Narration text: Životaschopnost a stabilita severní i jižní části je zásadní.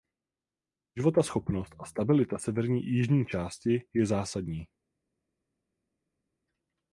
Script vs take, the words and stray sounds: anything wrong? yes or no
no